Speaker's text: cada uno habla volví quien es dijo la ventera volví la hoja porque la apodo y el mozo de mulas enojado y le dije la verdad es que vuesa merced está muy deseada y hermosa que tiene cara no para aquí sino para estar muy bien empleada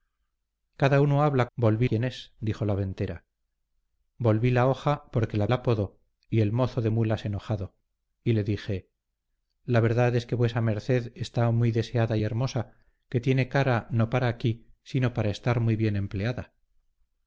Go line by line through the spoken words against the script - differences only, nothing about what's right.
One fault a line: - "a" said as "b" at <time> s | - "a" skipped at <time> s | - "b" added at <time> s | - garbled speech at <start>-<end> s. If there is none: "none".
none